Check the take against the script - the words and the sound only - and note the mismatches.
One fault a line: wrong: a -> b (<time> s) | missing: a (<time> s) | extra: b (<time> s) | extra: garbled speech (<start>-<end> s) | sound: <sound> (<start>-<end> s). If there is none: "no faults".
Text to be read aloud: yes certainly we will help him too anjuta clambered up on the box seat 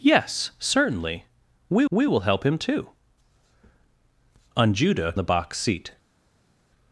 extra: we (1.9 s)
missing: clambered up on (5.2 s)